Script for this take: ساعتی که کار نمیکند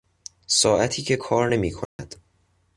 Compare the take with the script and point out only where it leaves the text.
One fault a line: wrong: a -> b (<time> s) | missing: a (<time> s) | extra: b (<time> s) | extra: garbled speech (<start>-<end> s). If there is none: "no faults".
no faults